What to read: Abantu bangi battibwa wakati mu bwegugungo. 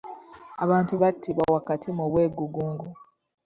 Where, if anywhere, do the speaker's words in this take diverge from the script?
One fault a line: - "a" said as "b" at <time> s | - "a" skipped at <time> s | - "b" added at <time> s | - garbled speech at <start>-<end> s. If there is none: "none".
- "bangi" skipped at 0.9 s